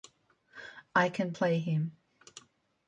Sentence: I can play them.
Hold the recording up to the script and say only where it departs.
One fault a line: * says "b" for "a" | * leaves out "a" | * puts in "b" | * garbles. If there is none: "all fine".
* says "him" for "them"